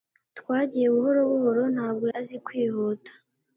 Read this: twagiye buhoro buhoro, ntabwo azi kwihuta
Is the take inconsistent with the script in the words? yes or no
no